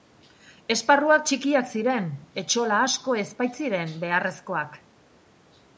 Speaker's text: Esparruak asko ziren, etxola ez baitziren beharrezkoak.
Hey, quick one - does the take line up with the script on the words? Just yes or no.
no